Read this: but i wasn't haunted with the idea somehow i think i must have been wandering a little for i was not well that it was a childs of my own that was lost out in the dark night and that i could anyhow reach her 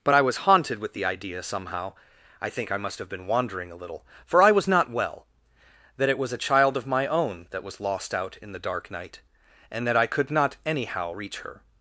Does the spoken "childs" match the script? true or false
false